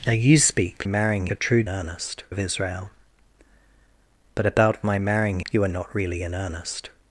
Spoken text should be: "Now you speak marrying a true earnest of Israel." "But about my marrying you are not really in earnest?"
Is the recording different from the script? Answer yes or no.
no